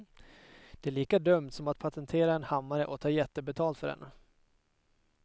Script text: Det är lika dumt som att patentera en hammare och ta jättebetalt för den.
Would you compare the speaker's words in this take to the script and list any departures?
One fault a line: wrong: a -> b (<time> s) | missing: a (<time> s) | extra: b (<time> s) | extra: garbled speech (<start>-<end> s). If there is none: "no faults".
no faults